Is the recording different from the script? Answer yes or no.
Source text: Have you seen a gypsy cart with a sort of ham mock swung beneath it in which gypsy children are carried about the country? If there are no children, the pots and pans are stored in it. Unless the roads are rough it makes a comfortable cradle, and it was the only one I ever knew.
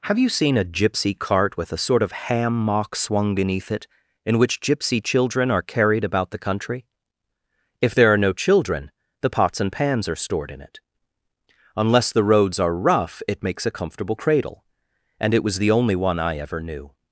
no